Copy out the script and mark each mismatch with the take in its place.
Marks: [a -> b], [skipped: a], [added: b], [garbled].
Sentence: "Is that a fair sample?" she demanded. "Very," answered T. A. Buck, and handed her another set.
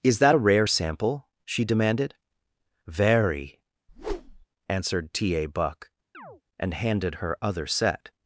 "Is that a [fair -> rare] sample?" she demanded. "Very," answered T. A. Buck, and handed her [another -> other] set.